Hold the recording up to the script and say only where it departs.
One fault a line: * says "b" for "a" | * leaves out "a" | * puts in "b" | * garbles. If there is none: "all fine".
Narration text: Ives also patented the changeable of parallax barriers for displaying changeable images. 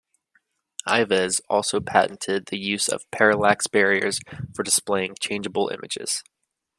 * says "use" for "changeable"